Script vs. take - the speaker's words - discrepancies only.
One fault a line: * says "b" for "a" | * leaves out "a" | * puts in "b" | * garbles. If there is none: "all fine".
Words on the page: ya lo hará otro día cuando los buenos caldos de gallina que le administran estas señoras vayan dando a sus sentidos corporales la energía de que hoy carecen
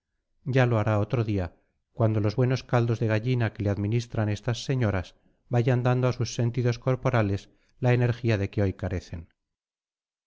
all fine